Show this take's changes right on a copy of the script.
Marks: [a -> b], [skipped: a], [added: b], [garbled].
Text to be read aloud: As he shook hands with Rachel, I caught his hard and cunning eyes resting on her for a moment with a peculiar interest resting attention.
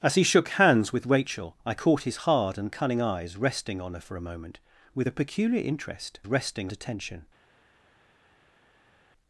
As he shook hands with Rachel, I caught his hard and cunning eyes resting on her for a moment with a peculiar interest resting attention.